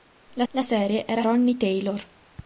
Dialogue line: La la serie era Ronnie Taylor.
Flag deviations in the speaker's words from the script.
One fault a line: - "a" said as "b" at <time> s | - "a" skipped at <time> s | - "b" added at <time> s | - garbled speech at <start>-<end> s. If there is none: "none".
none